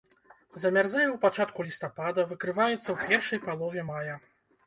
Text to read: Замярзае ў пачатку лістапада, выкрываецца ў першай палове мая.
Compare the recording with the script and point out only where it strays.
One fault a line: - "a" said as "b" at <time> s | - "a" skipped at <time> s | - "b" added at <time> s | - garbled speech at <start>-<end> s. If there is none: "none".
none